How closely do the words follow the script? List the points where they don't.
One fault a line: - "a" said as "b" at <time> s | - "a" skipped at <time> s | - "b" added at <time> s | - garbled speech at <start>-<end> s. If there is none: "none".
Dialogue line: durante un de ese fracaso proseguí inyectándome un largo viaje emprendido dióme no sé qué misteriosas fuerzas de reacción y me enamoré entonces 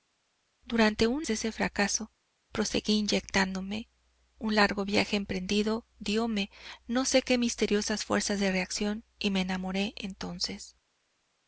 none